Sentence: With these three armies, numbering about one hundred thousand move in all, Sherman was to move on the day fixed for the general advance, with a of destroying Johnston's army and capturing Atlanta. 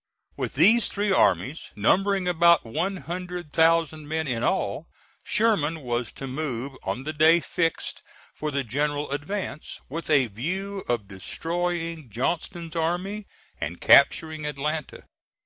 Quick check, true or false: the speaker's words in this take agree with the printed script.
false